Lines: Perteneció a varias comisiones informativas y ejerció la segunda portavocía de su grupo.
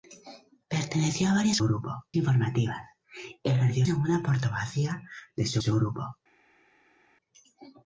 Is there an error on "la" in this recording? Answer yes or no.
yes